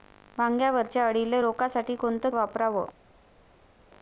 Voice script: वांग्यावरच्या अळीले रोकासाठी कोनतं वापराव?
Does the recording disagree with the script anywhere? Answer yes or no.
no